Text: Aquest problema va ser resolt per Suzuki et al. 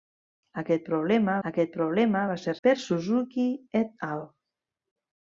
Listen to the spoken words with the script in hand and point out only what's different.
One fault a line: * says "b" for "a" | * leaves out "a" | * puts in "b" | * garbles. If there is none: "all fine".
* puts in "aquest problema"
* leaves out "resolt"